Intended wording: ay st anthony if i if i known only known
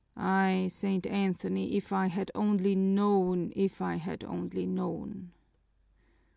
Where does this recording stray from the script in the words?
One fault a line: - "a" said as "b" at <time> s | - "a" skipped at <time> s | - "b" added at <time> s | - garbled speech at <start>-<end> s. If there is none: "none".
- "had only known" added at 2.1 s
- "known" said as "had" at 4.0 s